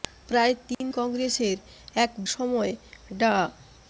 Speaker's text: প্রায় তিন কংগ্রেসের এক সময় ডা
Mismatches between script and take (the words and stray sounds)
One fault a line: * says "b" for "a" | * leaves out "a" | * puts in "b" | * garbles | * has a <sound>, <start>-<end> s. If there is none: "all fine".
* has a dropout, 0.7-0.8 s